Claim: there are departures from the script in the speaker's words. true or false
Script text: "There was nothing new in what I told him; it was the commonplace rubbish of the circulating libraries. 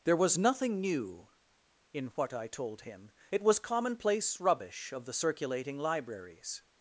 true